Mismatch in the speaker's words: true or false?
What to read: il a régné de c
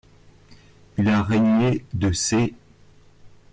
false